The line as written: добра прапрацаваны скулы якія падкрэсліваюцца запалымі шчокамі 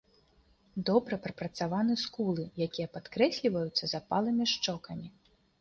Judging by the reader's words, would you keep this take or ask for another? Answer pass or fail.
pass